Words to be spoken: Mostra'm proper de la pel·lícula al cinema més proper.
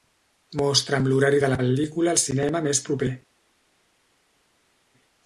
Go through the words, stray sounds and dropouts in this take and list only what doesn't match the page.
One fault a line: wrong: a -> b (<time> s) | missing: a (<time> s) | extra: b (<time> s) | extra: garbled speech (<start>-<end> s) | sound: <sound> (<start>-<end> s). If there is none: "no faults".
wrong: proper -> l'horari (1.1 s)